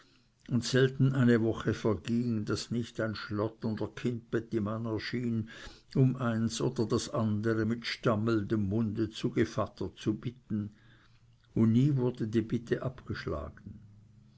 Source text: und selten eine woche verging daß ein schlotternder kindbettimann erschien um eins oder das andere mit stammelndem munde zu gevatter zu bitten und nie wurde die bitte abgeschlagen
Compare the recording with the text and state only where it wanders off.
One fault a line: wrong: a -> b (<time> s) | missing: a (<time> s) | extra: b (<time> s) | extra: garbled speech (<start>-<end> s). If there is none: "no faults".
extra: nicht (2.7 s)